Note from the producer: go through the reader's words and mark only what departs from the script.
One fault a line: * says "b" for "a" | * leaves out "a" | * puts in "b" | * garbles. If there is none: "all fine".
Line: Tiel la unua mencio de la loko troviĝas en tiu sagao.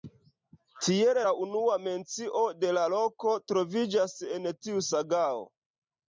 all fine